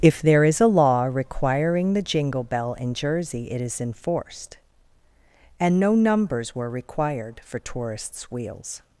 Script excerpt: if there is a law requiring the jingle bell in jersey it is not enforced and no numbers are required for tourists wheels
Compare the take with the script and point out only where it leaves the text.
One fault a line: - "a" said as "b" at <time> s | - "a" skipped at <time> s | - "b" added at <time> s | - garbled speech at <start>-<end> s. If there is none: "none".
- "not" skipped at 3.8 s
- "are" said as "were" at 6.5 s